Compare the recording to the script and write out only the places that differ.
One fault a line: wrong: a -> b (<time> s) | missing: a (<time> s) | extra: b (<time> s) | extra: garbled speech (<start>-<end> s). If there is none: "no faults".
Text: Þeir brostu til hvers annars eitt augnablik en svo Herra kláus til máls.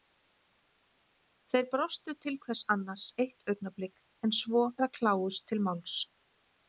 no faults